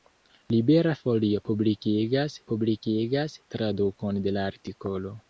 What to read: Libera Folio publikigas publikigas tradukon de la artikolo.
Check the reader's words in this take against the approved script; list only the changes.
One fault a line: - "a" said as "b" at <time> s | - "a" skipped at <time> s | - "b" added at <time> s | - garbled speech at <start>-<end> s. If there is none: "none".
none